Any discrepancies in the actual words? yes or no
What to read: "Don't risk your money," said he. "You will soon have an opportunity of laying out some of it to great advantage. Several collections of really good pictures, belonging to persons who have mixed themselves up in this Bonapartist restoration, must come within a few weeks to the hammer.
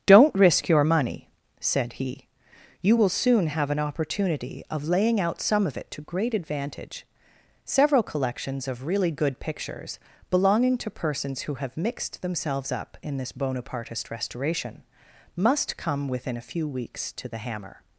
no